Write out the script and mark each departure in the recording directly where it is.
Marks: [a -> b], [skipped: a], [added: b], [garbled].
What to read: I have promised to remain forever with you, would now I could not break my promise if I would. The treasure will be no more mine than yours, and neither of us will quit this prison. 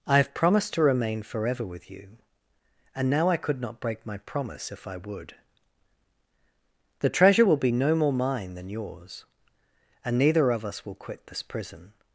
I have promised to remain forever with you, [would -> and] now I could not break my promise if I would. The treasure will be no more mine than yours, and neither of us will quit this prison.